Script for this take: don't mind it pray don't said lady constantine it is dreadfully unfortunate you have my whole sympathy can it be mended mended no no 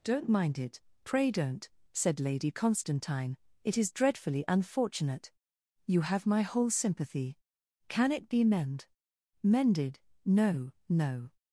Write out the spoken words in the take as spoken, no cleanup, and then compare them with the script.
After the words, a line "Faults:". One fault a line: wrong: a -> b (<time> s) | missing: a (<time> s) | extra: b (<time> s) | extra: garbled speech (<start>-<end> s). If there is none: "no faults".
don't mind it pray don't said lady constantine it is dreadfully unfortunate you have my whole sympathy can it be mend mended no no
Faults:
wrong: mended -> mend (8.4 s)